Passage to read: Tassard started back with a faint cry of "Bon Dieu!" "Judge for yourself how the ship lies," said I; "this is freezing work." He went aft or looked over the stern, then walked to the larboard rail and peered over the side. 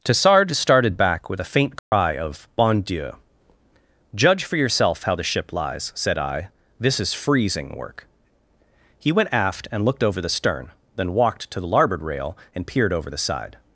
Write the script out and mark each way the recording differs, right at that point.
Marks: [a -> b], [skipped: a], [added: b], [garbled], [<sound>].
Tassard started back with a faint cry [dropout] of "Bon Dieu!" "Judge for yourself how the ship lies," said I; "this is freezing work." He went aft [or -> and] looked over the stern, then walked to the larboard rail and peered over the side.